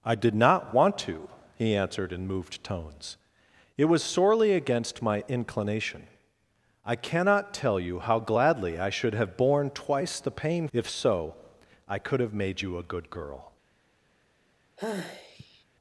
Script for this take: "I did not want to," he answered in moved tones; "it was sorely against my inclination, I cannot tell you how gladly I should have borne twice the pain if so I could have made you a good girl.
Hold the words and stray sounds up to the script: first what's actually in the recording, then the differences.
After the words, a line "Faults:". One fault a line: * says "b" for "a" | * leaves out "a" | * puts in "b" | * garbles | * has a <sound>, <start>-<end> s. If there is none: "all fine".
"I did not want to," he answered in moved tones; "it was sorely against my inclination, I cannot tell you how gladly I should have borne twice the pain if so I could have made you a good girl.
Faults:
* has a sigh, 14.8-15.6 s